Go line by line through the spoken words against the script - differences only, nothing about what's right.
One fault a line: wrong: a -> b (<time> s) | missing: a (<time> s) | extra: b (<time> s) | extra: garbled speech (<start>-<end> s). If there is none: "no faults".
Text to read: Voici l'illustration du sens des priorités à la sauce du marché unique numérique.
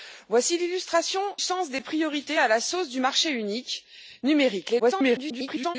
missing: du (1.2 s)
extra: garbled speech (4.8-5.8 s)